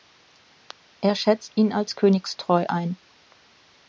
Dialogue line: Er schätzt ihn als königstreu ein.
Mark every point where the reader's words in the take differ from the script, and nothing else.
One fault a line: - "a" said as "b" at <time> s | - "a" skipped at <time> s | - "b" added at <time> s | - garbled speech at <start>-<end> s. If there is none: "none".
none